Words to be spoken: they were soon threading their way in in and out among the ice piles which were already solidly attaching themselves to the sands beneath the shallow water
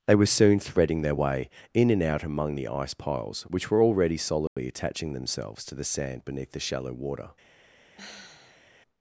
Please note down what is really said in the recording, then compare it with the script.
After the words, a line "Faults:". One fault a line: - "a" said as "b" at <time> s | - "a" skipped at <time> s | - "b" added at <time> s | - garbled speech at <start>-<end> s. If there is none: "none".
they were soon threading their way in and out among the ice piles which were already solidly attaching themselves to the sand beneath the shallow water
Faults:
- "in" skipped at 1.9 s
- "sands" said as "sand" at 5.8 s